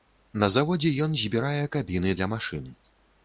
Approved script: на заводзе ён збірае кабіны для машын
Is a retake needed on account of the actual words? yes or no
no